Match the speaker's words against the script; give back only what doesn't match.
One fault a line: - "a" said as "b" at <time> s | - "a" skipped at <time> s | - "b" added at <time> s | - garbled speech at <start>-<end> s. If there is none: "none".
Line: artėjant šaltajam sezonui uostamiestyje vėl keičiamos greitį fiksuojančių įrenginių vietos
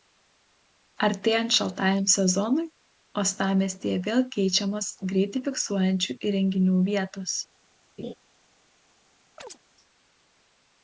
none